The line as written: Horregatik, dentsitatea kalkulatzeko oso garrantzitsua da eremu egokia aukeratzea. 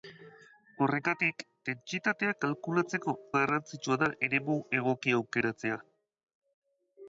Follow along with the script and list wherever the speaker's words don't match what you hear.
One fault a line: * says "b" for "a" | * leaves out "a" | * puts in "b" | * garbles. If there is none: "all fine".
* leaves out "oso"